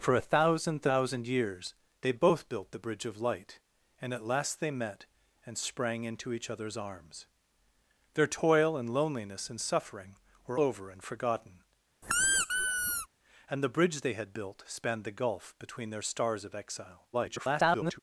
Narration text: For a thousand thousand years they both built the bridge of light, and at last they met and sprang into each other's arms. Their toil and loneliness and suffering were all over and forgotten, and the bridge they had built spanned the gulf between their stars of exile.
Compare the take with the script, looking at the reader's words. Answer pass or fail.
fail